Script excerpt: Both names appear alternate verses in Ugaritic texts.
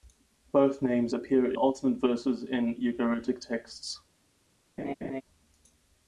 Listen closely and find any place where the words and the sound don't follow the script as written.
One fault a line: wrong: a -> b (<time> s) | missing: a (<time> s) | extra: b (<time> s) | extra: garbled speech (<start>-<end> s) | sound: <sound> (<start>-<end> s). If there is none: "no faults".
sound: laugh (4.8-5.2 s)